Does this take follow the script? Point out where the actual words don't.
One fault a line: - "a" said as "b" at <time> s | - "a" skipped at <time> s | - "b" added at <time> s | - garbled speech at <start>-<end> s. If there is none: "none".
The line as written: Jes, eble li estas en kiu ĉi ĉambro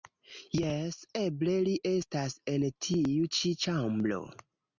- "kiu" said as "tiu" at 2.9 s